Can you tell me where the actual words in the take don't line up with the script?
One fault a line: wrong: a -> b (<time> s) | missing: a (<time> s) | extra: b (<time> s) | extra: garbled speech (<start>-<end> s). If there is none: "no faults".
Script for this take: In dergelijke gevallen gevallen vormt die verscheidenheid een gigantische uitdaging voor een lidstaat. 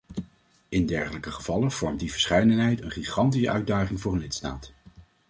missing: gevallen (1.7 s)